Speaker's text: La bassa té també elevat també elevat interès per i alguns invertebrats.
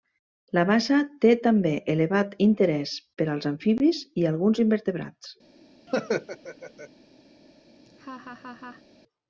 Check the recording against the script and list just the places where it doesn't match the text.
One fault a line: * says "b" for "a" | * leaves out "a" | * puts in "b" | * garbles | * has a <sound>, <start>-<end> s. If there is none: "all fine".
* says "interès per als amfibis" for "també elevat interès per"
* has a laugh, 5.9-6.9 s
* has a laugh, 7.8-8.8 s